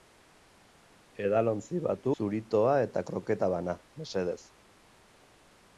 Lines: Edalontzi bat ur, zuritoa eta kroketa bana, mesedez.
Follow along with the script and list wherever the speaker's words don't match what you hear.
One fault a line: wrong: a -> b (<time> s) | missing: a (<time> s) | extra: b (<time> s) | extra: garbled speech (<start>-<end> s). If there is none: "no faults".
missing: ur (2.1 s)